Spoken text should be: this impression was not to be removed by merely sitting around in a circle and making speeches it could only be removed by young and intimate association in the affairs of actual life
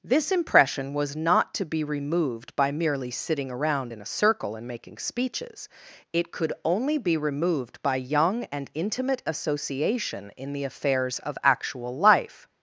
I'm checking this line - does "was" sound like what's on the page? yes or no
yes